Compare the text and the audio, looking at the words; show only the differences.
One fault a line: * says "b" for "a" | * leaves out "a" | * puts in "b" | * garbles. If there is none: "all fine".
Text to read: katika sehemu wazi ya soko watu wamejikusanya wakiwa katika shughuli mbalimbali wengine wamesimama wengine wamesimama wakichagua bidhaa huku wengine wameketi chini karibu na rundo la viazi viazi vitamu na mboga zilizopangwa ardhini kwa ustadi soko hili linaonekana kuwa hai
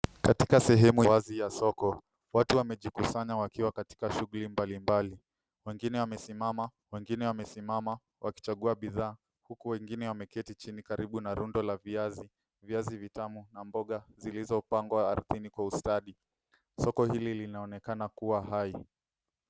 all fine